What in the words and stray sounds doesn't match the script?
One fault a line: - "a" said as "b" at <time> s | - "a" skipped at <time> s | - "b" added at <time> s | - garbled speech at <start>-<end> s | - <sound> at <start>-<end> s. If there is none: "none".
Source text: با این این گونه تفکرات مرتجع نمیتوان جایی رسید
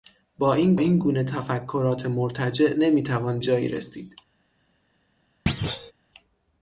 - thud at 5.5-5.9 s